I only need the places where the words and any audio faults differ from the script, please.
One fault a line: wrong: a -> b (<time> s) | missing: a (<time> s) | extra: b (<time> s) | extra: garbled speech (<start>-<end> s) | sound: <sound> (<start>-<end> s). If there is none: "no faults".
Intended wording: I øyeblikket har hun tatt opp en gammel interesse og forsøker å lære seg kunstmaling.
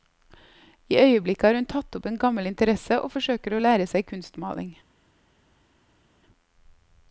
no faults